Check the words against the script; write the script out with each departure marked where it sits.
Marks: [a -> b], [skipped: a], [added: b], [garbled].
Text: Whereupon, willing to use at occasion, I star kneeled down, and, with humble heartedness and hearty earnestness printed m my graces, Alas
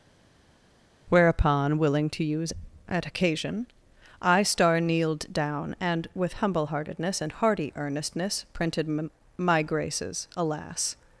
Whereupon, willing to use at occasion, I star kneeled down, and, with humble heartedness and hearty earnestness printed m my graces, Alas